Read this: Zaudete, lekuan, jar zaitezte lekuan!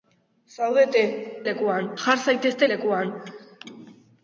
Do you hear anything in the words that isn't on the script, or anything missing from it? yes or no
no